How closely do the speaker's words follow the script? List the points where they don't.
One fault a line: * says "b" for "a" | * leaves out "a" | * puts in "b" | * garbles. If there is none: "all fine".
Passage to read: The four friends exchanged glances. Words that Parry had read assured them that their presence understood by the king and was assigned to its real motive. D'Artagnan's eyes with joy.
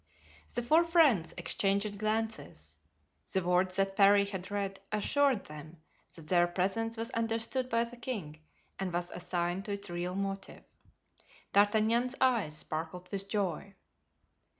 * puts in "The"
* puts in "was"
* puts in "sparkled"